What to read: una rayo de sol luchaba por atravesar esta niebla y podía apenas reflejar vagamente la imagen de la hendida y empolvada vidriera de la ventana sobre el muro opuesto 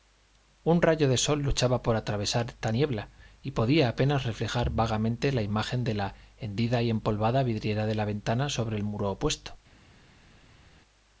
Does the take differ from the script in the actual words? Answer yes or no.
yes